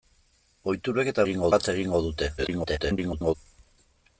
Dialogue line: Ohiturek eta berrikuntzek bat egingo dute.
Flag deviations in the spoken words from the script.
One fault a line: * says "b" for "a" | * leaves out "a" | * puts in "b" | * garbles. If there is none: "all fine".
* says "egingo" for "berrikuntzek"
* garbles